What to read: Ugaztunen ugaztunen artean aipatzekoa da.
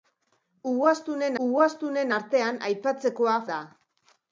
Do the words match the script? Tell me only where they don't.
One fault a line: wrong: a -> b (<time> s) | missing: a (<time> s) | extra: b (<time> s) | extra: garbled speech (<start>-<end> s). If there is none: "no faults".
no faults